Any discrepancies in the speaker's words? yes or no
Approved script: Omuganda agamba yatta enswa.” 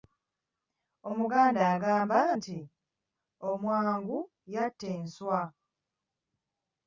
yes